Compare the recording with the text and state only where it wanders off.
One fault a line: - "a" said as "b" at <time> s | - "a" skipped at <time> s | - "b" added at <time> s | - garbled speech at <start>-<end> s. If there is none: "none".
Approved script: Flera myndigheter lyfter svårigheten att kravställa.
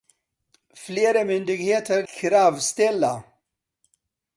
- "lyfter svårigheten att" skipped at 2.0 s